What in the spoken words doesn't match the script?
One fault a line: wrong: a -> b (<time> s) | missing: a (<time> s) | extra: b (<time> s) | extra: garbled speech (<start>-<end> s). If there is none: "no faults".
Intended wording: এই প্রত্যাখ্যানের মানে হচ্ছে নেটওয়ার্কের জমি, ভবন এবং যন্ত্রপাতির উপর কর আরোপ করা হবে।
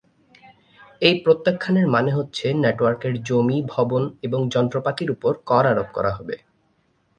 no faults